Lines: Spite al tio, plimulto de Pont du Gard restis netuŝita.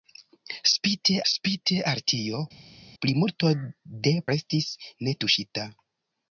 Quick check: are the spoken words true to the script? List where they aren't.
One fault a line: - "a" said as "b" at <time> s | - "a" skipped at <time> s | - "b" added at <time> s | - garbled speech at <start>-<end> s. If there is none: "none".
- "spite" added at 1.3 s
- "Pont du Gard" skipped at 4.1 s